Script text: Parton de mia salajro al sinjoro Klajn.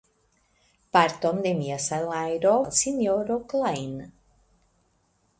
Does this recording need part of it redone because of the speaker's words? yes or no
no